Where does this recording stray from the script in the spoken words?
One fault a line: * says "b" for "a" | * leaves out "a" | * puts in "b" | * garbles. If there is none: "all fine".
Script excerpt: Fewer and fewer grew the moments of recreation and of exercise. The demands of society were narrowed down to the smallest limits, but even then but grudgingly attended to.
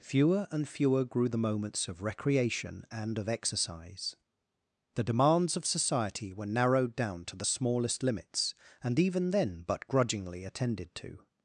* says "and" for "but"